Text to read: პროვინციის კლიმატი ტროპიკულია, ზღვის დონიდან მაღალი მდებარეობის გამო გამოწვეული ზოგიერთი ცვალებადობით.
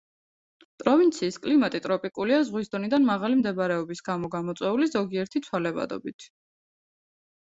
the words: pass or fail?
pass